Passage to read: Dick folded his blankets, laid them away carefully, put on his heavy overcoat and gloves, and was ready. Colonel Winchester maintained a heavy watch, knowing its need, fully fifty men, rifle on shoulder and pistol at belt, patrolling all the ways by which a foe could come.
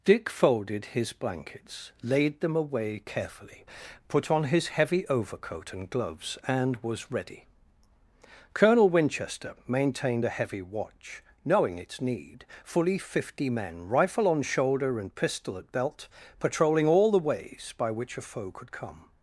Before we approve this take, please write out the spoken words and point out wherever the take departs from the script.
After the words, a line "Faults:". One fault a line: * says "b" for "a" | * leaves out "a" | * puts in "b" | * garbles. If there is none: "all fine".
Dick folded his blankets, laid them away carefully, put on his heavy overcoat and gloves, and was ready. Colonel Winchester maintained a heavy watch, knowing its need, fully fifty men, rifle on shoulder and pistol at belt, patrolling all the ways by which a foe could come.
Faults:
all fine